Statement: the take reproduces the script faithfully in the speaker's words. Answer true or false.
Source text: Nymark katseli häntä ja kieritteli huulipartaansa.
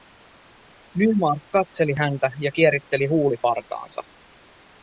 true